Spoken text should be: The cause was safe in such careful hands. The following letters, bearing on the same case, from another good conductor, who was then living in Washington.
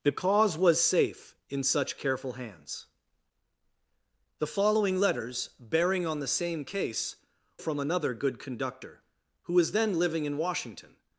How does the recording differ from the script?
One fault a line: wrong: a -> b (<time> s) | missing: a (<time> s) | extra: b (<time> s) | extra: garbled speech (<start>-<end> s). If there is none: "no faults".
no faults